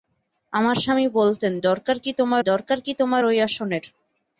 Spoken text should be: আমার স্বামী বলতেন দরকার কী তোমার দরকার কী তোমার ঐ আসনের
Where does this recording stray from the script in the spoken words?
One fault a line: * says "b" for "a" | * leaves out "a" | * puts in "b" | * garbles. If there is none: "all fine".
all fine